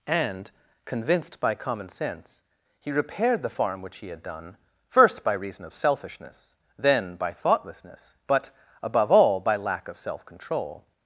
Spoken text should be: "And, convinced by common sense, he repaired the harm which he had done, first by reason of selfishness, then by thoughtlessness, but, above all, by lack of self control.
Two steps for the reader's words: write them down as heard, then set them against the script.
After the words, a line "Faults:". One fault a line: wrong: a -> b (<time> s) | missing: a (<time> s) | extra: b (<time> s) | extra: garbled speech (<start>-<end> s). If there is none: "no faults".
"And, convinced by common sense, he repaired the farm which he had done, first by reason of selfishness, then by thoughtlessness, but, above all, by lack of self control.
Faults:
wrong: harm -> farm (3.5 s)